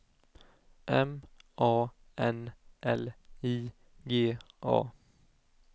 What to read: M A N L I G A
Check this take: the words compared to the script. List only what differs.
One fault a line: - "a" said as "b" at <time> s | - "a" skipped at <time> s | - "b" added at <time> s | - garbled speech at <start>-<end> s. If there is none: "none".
none